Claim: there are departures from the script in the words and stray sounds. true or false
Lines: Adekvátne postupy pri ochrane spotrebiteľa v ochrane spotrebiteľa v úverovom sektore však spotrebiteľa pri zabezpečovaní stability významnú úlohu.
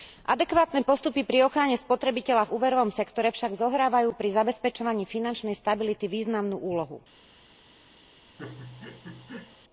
true